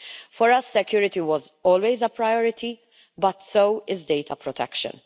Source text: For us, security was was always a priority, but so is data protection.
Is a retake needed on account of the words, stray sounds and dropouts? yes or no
yes